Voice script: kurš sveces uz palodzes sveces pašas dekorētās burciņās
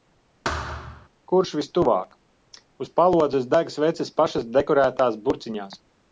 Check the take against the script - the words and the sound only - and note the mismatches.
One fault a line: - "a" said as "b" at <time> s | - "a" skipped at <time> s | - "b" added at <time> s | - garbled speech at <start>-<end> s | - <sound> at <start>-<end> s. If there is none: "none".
- thud at 0.4-1.1 s
- "sveces" said as "vistuvāk" at 1.6 s
- "deg" added at 3.5 s